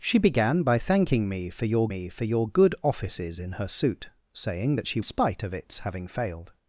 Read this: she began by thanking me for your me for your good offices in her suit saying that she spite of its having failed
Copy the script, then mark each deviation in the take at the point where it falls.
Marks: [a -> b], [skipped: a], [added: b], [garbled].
she began by thanking me for your me for your good offices in her suit saying that she spite of its having failed